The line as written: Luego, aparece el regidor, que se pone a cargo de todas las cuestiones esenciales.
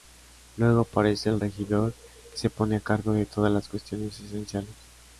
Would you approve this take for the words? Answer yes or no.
yes